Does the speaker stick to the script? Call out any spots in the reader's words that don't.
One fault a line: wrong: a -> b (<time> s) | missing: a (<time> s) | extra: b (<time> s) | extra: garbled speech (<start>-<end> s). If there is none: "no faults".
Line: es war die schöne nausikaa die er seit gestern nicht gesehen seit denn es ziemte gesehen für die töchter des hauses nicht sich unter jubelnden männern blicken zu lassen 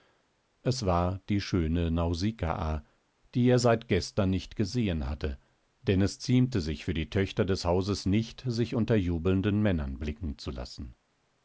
wrong: seit -> hatte (5.1 s)
wrong: gesehen -> sich (6.6 s)